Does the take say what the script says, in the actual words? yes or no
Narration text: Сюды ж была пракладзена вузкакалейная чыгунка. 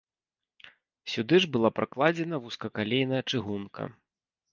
yes